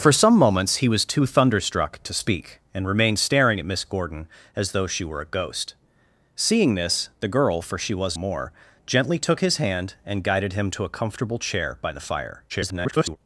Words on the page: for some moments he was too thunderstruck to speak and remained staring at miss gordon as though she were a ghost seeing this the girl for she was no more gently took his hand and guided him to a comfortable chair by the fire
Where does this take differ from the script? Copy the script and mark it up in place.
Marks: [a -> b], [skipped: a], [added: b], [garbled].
for some moments he was too thunderstruck to speak and remained staring at miss gordon as though she were a ghost seeing this the girl for she was [skipped: no] more gently took his hand and guided him to a comfortable chair by the fire [garbled]